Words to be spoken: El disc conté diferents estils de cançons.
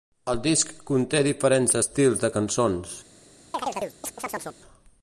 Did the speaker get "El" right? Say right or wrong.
right